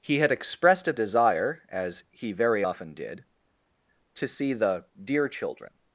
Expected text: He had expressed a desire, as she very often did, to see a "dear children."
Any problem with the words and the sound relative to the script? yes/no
yes